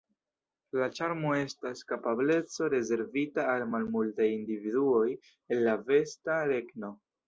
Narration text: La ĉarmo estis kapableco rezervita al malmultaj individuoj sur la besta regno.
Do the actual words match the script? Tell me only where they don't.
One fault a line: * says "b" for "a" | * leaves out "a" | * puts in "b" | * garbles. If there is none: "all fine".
* says "estas" for "estis"
* says "el" for "sur"